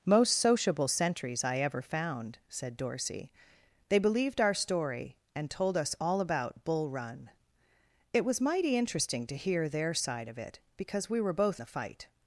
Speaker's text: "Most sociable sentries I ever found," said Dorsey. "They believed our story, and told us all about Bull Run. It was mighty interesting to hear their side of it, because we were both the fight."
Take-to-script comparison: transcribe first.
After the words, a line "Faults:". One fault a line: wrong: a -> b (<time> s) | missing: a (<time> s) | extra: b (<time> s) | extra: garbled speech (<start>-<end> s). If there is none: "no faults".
"Most sociable sentries I ever found," said Dorsey. "They believed our story, and told us all about Bull Run. It was mighty interesting to hear their side of it, because we were both the fight."
Faults:
no faults